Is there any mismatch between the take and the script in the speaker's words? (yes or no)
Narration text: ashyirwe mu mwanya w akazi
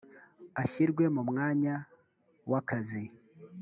no